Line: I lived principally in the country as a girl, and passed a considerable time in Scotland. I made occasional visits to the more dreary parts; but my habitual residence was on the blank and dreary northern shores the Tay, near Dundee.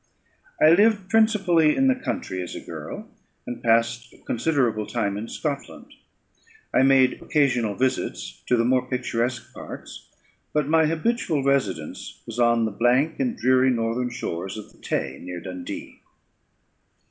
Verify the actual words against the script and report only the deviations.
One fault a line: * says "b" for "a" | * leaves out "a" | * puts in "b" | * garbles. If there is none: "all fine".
* says "picturesque" for "dreary"
* puts in "of"